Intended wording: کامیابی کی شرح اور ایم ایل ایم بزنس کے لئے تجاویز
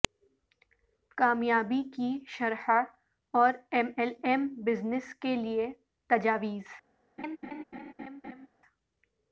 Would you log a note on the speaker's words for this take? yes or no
no